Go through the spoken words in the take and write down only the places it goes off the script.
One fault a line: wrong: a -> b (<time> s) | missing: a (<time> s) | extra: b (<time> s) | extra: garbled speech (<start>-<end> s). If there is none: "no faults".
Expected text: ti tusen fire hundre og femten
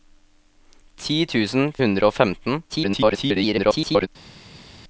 missing: fire (1.7 s)
extra: garbled speech (2.7-4.1 s)